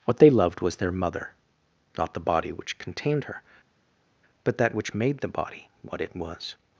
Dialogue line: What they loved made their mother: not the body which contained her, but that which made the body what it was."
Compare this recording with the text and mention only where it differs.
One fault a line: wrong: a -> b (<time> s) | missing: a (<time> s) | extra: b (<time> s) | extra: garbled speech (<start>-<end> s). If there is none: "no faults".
wrong: made -> was (0.6 s)